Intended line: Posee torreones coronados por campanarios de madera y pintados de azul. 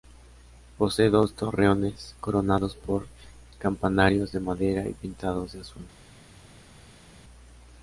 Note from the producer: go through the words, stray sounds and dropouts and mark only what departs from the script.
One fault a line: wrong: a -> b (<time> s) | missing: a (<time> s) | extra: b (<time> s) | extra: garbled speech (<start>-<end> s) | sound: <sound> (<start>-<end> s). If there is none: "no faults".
extra: dos (1.1 s)